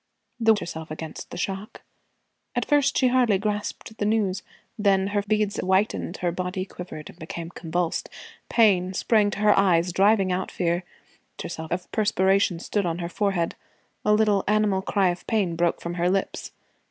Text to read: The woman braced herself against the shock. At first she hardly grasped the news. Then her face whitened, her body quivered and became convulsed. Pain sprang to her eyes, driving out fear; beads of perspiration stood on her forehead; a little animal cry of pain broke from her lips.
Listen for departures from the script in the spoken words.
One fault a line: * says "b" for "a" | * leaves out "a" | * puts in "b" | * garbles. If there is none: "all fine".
* leaves out "woman braced"
* says "beads" for "face"
* says "herself" for "beads"